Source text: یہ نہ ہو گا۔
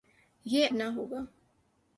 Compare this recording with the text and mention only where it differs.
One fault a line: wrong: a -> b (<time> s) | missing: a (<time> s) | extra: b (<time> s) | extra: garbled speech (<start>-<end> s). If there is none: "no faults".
no faults